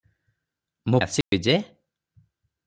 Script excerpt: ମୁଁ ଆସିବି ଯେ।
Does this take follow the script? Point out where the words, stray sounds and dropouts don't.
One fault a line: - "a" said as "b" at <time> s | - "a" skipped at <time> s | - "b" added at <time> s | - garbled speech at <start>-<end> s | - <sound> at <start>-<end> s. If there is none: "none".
- dropout at 1.2-1.3 s